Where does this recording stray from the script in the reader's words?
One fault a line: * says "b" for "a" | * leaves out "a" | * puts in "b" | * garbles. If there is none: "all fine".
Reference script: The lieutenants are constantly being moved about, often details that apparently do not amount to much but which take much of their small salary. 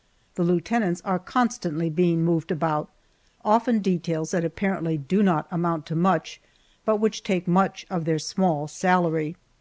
all fine